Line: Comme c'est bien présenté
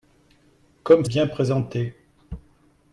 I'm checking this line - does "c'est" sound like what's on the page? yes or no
no